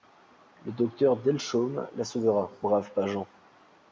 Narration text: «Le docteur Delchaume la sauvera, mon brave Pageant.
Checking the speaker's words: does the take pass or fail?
fail